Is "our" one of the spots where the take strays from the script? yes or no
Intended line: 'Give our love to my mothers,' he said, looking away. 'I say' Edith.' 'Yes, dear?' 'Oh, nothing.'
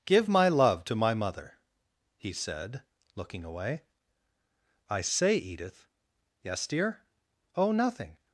yes